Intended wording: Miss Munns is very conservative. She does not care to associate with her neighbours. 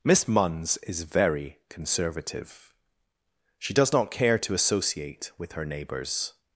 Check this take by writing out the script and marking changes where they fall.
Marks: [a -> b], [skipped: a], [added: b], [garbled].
Miss Munns is very conservative. She does not care to associate with her neighbours.